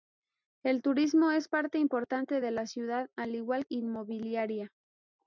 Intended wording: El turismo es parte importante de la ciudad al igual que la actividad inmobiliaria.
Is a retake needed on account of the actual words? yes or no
yes